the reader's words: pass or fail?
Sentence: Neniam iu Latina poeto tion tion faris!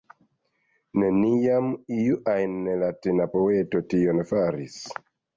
fail